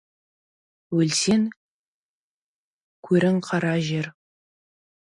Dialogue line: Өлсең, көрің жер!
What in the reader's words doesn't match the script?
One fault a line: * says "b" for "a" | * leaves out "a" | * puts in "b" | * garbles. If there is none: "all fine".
* puts in "қара"